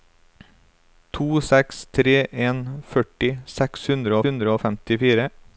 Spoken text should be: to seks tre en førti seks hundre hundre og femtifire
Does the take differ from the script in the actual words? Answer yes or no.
no